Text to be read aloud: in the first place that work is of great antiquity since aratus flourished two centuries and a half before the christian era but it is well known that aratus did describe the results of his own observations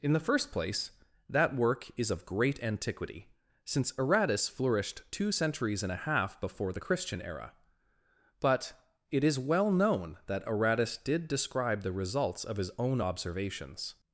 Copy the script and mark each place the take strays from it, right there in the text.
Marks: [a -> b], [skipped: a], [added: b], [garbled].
in the first place that work is of great antiquity since aratus flourished two centuries and a half before the christian era but it is well known that aratus did describe the results of his own observations